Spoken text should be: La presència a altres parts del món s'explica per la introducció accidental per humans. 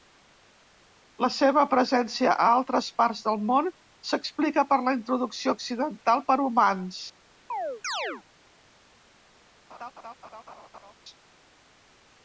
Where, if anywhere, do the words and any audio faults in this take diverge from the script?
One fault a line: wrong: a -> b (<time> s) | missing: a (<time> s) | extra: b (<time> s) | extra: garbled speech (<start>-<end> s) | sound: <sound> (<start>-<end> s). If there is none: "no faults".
extra: seva (1.3 s)
sound: chirp (7.5-8.2 s)
sound: laugh (9.7-10.9 s)